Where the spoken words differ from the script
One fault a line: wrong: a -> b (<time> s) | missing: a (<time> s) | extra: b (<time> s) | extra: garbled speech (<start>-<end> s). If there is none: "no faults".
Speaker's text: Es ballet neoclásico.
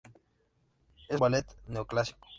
no faults